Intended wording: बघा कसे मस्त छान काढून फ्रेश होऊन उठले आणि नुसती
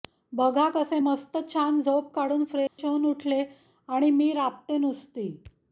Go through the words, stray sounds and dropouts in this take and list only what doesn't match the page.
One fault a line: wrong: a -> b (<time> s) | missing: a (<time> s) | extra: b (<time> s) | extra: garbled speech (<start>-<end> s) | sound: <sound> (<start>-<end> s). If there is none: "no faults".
extra: झोप (1.8 s)
sound: dropout (2.7-2.8 s)
extra: मी राबते (4.1 s)